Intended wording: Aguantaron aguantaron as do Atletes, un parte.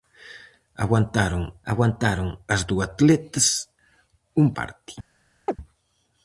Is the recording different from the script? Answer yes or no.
no